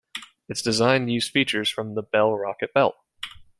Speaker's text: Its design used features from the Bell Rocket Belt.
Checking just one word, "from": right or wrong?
right